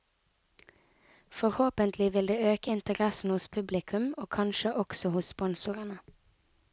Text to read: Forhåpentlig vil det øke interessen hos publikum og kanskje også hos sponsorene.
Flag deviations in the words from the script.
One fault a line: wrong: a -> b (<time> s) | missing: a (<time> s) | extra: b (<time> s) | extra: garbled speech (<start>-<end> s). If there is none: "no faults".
no faults